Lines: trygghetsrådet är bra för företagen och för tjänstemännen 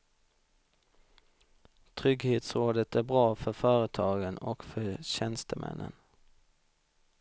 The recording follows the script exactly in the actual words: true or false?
true